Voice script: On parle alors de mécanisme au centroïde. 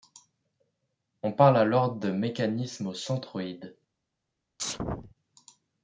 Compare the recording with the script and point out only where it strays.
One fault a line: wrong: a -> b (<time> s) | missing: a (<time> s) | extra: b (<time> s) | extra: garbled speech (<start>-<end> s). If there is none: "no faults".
no faults